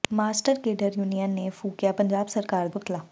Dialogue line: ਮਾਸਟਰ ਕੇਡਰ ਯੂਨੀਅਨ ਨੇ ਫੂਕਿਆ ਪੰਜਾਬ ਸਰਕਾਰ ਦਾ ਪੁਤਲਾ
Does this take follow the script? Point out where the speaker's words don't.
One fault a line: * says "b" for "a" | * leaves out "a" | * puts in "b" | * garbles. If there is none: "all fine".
* leaves out "ਦਾ"